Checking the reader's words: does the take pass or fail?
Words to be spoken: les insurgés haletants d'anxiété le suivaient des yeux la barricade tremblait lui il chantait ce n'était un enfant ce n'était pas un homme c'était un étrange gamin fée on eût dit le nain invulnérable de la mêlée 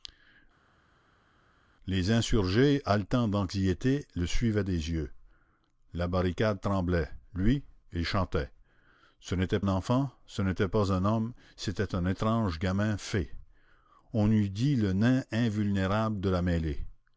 pass